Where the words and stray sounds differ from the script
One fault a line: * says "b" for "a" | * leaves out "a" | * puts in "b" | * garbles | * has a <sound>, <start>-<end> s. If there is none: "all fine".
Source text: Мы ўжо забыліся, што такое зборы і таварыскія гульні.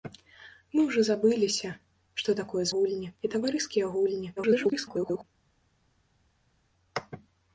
* says "гульні" for "зборы"
* garbles